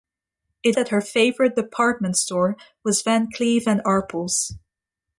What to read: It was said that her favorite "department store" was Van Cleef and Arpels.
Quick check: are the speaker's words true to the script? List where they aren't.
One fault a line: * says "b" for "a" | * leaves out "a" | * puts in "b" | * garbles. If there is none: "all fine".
* leaves out "was said"